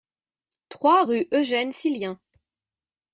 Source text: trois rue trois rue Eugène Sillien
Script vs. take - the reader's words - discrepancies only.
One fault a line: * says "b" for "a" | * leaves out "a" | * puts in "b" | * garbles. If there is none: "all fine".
* leaves out "trois rue"